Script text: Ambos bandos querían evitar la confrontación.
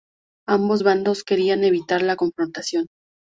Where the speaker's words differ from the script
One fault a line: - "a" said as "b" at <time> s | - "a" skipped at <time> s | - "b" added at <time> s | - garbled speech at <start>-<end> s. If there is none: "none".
none